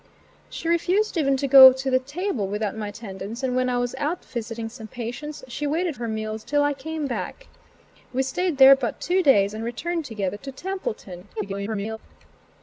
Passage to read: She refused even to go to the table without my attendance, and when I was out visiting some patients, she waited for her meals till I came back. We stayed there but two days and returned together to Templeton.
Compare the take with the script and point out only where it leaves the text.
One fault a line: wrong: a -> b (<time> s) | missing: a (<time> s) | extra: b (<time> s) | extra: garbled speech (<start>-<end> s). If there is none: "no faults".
missing: for (6.0 s)
extra: garbled speech (11.4-12.0 s)